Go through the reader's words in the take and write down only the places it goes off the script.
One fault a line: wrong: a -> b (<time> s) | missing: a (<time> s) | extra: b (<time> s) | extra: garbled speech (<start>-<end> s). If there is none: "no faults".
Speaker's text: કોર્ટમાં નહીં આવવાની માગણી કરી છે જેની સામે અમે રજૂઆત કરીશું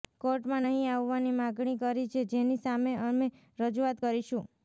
no faults